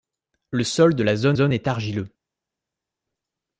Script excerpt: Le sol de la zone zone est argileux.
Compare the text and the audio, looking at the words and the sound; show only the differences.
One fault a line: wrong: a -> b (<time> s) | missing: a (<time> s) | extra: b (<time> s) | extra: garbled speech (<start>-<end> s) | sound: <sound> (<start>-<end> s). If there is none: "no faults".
no faults